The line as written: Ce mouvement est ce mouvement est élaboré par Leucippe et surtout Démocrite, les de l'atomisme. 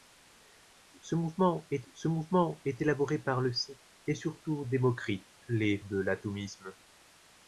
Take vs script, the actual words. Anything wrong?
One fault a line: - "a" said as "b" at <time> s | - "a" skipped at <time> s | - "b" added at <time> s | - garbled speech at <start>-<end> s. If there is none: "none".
none